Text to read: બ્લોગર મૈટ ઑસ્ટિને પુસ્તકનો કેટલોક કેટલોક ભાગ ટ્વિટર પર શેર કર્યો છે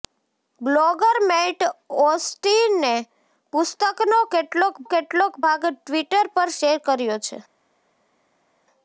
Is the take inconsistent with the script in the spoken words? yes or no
no